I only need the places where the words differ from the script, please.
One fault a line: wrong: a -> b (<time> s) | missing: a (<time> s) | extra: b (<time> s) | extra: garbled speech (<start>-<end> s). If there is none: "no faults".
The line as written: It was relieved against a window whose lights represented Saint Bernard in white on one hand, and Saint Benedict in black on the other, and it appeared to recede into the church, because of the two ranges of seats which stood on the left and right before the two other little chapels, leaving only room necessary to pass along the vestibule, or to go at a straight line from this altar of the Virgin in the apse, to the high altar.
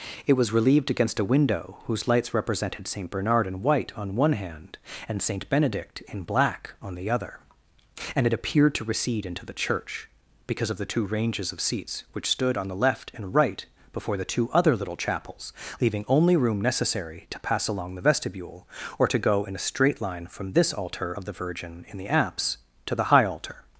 wrong: at -> in (19.4 s)